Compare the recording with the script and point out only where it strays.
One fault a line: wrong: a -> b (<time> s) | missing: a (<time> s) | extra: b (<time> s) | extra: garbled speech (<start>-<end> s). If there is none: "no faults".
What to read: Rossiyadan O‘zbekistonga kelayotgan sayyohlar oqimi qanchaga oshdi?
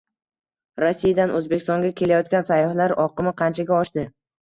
no faults